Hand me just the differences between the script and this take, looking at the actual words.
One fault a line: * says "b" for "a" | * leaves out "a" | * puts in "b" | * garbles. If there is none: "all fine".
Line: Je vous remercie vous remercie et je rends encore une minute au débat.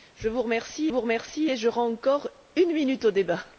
all fine